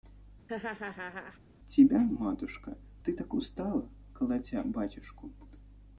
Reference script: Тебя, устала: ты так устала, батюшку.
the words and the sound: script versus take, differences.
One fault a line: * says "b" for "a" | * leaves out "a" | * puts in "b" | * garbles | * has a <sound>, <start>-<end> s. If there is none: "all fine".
* has a laugh, 0.5-1.4 s
* says "матушка" for "устала"
* puts in "колотя"